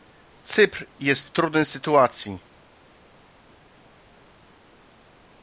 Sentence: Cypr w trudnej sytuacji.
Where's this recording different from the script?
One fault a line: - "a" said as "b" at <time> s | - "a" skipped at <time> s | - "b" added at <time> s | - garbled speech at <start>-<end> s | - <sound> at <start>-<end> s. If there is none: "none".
- "jest" added at 1.0 s